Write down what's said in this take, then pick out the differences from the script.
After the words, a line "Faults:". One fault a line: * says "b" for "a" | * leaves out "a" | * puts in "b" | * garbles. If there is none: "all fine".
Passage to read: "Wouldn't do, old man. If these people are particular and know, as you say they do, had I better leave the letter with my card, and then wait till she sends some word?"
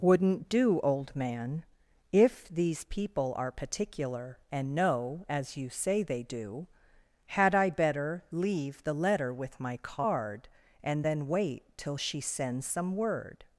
"Wouldn't do, old man. If these people are particular and know, as you say they do, had I better leave the letter with my card, and then wait till she sends some word?"
Faults:
all fine